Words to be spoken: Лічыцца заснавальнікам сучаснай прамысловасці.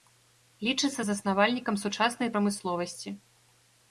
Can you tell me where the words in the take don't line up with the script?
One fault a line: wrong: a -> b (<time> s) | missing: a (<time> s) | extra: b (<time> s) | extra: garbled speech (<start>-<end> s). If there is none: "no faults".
no faults